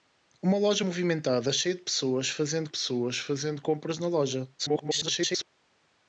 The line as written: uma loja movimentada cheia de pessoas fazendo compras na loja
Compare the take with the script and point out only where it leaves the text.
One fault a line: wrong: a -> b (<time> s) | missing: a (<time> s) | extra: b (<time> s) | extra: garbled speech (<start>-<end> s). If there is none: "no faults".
extra: pessoas fazendo (2.7 s)
extra: garbled speech (4.6-5.5 s)